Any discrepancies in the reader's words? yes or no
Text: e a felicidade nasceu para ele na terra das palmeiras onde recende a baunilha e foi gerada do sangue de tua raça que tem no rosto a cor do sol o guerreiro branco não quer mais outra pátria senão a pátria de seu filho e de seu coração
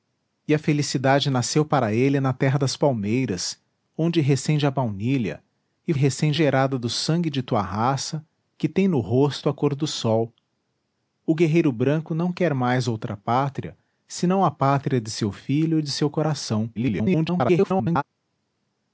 yes